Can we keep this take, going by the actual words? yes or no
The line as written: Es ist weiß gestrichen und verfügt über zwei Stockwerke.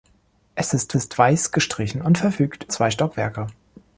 no